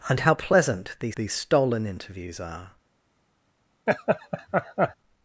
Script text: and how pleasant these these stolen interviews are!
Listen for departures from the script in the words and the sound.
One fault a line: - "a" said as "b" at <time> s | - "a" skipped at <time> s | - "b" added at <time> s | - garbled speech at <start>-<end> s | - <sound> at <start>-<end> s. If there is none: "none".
- laugh at 3.9-4.9 s